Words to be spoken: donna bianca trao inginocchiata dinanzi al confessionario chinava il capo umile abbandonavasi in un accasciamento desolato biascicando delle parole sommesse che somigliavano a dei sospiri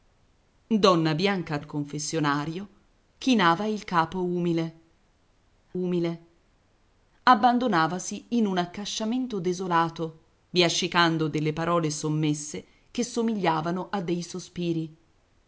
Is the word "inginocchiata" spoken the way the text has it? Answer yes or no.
no